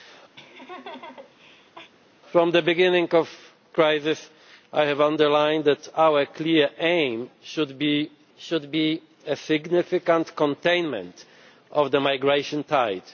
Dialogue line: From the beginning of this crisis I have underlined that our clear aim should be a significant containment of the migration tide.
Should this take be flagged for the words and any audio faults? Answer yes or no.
yes